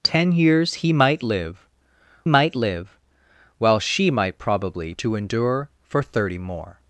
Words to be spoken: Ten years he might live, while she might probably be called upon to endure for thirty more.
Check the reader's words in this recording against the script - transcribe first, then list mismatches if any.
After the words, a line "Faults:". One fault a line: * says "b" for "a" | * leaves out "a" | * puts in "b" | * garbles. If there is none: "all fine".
Ten years he might live might live, while she might probably to endure for thirty more.
Faults:
* puts in "might live"
* leaves out "be called upon"